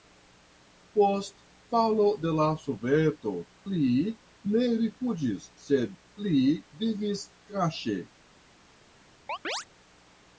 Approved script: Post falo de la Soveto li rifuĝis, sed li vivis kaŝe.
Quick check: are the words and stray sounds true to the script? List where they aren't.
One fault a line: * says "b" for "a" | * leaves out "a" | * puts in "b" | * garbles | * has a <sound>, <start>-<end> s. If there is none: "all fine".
* puts in "ne"
* has a chirp, 9.3-9.7 s